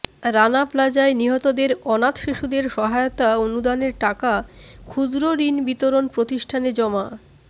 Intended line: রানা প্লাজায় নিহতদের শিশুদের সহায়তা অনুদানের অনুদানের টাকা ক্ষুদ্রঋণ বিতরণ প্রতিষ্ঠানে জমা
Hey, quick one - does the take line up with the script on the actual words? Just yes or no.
no